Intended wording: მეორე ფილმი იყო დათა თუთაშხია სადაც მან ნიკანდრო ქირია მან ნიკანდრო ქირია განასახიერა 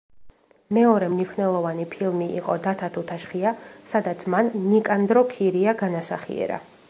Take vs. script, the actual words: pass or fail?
fail